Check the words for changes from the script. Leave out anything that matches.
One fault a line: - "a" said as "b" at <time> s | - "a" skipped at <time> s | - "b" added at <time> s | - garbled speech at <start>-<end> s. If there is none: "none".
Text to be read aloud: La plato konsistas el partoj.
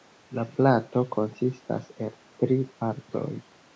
- "tri" added at 2.4 s